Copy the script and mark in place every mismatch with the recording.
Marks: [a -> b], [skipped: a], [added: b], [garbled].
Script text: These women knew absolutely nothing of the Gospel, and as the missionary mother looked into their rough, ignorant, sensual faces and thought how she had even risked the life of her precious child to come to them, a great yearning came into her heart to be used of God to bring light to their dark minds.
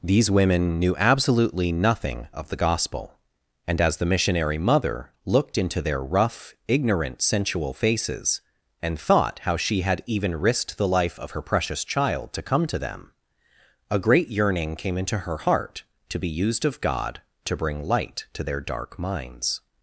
These women knew absolutely nothing of the Gospel, and as the missionary mother looked into their rough, ignorant, sensual faces and thought how she had even risked the life of her precious child to come to them, a great yearning came into her heart to be used of God to bring light to their dark minds.